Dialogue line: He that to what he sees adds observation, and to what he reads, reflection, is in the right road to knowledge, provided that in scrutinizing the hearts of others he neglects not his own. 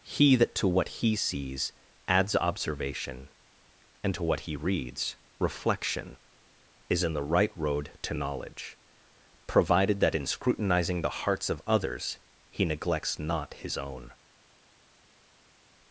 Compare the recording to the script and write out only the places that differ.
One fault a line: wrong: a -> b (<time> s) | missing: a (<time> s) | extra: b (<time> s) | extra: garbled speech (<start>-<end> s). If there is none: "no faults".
no faults